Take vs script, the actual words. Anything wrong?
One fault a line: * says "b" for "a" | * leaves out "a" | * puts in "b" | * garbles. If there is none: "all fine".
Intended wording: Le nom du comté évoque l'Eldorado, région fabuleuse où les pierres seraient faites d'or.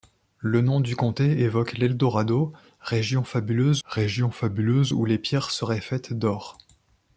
* puts in "région fabuleuse"